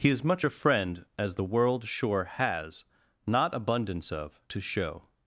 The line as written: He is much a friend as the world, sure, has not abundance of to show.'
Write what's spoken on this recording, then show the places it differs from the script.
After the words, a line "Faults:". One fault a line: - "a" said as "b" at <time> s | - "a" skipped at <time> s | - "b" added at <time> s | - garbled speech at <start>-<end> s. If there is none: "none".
He is much a friend as the world, sure, has not abundance of to show.'
Faults:
none